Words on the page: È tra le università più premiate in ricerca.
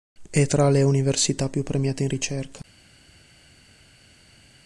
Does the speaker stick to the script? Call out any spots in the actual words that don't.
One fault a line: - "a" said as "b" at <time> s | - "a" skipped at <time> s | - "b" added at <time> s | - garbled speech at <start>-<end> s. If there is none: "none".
none